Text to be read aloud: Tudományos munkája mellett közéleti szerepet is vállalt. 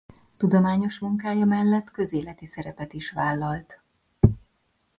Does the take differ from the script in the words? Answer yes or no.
no